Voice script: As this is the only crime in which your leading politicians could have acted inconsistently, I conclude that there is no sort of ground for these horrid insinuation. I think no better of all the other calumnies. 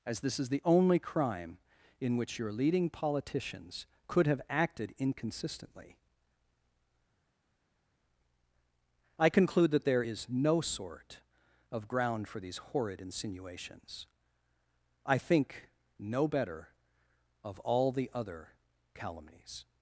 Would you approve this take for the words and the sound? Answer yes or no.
no